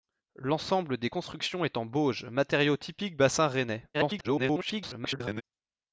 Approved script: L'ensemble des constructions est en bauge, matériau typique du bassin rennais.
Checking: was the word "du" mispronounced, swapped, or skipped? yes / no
yes